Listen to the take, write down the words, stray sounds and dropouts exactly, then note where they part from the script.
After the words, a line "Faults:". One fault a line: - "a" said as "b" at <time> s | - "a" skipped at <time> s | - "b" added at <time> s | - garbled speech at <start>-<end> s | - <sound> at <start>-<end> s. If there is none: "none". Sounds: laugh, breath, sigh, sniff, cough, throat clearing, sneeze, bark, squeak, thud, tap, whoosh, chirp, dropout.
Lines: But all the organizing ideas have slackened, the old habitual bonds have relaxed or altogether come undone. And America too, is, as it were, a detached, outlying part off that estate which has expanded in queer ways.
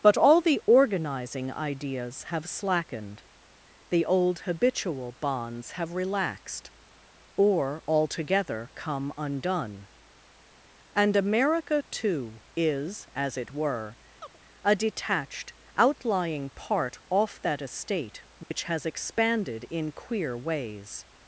But all the organizing ideas have slackened, the old habitual bonds have relaxed or altogether come undone. And America too, is, as it were, a detached, outlying part off that estate which has expanded in queer ways.
Faults:
- chirp at 14.2-14.4 s
- dropout at 18.4-18.5 s